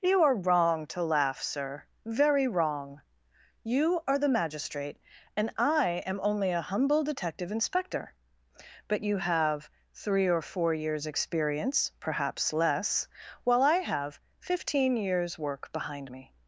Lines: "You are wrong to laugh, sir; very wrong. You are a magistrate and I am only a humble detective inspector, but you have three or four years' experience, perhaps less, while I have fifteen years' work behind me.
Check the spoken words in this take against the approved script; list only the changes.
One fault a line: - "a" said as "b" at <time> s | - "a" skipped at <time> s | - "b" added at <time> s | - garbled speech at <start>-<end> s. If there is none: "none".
- "a" said as "the" at 4.2 s